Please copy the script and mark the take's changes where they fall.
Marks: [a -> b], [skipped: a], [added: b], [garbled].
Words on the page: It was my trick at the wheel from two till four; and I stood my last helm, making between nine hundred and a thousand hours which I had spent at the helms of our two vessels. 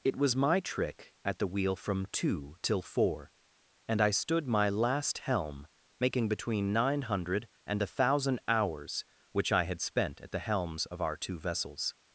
It was my trick at the wheel from two till four; and I stood my last helm, making between nine hundred and a thousand hours which I had spent at the helms of our two vessels.